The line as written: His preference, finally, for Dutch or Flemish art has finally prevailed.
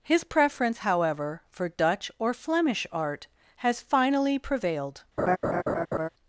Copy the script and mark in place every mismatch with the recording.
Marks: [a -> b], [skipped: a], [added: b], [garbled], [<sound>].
His preference, [finally, -> however] for Dutch or Flemish art has finally prevailed. [laugh]